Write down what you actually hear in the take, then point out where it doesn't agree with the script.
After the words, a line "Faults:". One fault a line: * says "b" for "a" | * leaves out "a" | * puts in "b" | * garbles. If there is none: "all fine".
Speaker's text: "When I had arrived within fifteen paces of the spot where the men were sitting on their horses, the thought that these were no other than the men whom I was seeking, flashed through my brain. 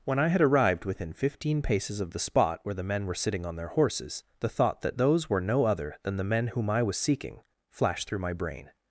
"When I had arrived within fifteen paces of the spot where the men were sitting on their horses, the thought that those were no other than the men whom I was seeking, flashed through my brain.
Faults:
* says "those" for "these"